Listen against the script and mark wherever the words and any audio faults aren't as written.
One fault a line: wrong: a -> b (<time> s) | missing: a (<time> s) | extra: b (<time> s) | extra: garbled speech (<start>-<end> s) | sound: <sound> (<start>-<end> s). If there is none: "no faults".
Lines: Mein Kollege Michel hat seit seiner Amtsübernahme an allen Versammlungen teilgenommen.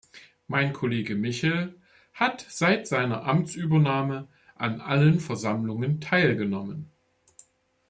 no faults